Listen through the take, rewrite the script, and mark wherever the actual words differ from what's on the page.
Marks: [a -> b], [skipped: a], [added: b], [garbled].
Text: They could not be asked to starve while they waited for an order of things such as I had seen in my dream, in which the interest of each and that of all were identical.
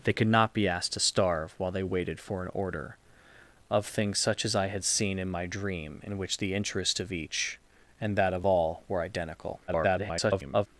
They could not be asked to starve while they waited for an order of things such as I had seen in my dream, in which the interest of each and that of all were identical. [garbled]